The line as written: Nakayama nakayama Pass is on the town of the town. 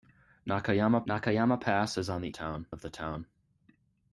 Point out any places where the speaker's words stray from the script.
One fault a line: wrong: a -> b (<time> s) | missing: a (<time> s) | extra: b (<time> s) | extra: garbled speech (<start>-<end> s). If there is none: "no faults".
no faults